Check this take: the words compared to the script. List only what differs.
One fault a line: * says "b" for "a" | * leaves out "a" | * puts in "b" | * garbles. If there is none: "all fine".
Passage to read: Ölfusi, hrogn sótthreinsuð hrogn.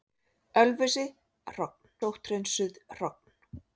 all fine